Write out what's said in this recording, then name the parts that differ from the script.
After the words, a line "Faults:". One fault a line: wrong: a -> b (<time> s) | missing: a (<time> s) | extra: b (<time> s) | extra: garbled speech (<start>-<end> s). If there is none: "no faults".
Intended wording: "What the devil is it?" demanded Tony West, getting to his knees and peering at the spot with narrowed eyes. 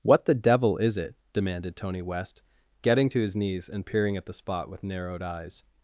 "What the devil is it?" demanded Tony West, getting to his knees and peering at the spot with narrowed eyes.
Faults:
no faults